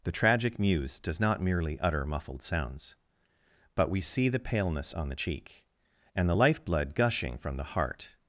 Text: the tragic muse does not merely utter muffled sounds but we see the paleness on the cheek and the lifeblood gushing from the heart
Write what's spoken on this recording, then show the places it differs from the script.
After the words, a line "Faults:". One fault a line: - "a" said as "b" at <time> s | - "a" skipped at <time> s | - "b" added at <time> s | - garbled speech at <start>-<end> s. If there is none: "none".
the tragic muse does not merely utter muffled sounds but we see the paleness on the cheek and the lifeblood gushing from the heart
Faults:
none